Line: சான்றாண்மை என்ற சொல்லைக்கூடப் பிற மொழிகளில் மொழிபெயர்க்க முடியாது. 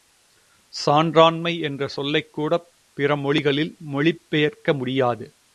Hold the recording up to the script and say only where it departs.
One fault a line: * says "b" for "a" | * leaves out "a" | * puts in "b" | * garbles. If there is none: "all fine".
all fine